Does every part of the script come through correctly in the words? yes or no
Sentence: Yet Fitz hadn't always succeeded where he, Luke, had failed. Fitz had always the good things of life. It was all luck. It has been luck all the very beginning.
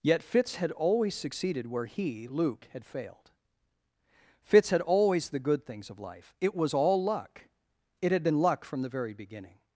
no